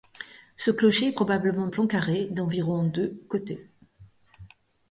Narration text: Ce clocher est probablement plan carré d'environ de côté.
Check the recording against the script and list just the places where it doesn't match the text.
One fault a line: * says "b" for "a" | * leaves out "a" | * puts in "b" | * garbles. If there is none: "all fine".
all fine